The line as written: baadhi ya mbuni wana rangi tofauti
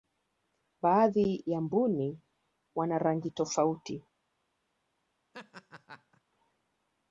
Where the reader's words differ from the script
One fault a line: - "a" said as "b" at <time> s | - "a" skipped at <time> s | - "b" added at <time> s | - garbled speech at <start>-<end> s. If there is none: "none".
none